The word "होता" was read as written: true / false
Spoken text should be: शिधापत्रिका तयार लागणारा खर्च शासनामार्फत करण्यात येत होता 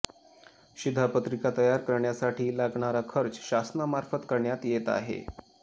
false